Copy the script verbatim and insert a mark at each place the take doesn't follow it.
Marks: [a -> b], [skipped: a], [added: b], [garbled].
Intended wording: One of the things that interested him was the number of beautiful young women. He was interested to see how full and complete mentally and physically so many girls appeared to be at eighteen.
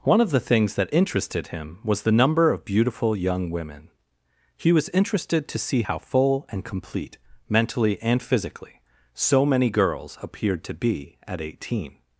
One of the things that interested him was the number of beautiful young women. He was interested to see how full and complete mentally and physically so many girls appeared to be at eighteen.